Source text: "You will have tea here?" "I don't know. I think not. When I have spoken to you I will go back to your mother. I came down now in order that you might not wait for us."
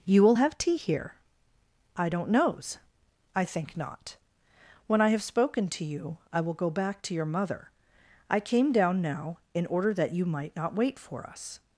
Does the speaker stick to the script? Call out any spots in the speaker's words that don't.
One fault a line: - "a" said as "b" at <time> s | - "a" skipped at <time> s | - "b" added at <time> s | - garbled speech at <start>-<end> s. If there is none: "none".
- "know" said as "knows" at 2.3 s